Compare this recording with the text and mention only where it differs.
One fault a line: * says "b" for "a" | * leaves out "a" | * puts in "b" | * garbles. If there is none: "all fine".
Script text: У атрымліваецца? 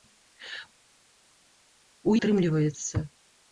all fine